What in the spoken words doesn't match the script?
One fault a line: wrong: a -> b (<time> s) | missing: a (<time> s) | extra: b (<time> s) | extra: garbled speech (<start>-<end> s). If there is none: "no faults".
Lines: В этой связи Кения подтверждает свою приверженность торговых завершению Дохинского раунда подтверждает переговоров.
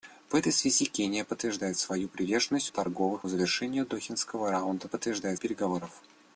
no faults